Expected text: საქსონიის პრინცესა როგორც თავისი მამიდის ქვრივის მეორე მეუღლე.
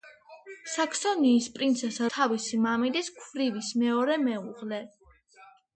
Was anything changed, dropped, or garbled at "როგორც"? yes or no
yes